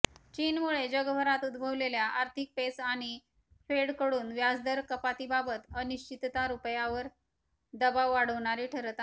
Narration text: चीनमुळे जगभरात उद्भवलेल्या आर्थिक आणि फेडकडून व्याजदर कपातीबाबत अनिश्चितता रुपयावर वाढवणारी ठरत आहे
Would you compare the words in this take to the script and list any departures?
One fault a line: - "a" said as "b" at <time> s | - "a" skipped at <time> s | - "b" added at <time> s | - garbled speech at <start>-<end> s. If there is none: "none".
- "पेच" added at 2.6 s
- "दबाव" added at 7.7 s